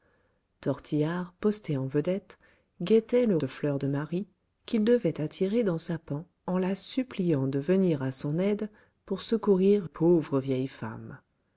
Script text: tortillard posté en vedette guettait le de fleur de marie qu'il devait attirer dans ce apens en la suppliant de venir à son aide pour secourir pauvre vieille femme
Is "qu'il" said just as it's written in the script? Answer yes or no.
yes